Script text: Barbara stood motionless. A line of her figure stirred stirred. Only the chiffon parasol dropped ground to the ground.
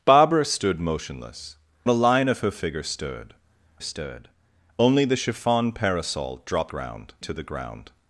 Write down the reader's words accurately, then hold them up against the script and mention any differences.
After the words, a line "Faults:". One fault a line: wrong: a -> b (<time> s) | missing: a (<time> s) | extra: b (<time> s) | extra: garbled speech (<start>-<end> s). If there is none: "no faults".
Barbara stood motionless. A line of her figure stirred stirred. Only the chiffon parasol dropped ground to the ground.
Faults:
no faults